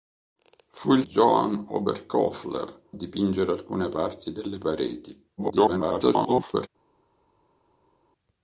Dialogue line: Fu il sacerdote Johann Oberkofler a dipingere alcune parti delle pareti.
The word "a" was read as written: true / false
false